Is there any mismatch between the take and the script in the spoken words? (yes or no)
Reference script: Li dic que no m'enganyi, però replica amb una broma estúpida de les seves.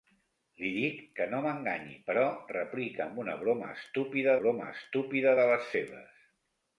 yes